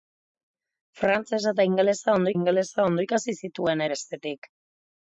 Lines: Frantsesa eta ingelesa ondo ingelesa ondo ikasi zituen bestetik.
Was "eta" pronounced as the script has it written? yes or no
yes